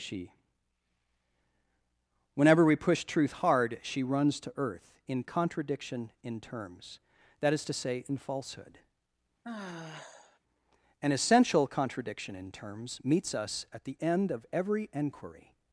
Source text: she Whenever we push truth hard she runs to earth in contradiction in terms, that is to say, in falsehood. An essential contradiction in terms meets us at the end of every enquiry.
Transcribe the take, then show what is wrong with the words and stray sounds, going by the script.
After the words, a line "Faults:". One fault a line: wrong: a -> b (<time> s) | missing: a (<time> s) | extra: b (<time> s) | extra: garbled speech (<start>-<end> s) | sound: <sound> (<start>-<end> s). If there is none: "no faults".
she Whenever we push truth hard she runs to earth in contradiction in terms, that is to say, in falsehood. An essential contradiction in terms meets us at the end of every enquiry.
Faults:
sound: sigh (9.4-10.4 s)